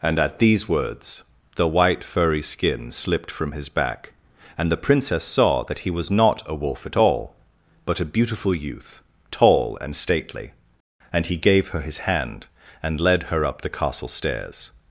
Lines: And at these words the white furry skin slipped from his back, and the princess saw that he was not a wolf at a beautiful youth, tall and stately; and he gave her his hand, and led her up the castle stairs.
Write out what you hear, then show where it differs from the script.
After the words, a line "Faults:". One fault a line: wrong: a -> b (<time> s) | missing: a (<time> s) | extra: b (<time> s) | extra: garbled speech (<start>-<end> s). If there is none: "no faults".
And at these words the white furry skin slipped from his back, and the princess saw that he was not a wolf at all, but a beautiful youth, tall and stately; and he gave her his hand, and led her up the castle stairs.
Faults:
extra: all but (7.0 s)